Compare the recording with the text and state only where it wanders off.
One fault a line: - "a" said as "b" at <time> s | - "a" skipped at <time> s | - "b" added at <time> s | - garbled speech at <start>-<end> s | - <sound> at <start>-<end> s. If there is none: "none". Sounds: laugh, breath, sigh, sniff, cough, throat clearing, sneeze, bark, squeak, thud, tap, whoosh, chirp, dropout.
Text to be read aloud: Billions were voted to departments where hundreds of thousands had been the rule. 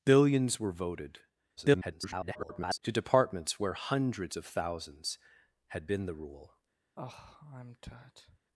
- garbled speech at 1.6-2.8 s
- sigh at 7.0-8.4 s